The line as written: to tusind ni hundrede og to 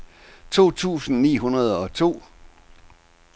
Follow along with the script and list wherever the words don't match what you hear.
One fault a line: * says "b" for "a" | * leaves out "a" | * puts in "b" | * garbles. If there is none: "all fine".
all fine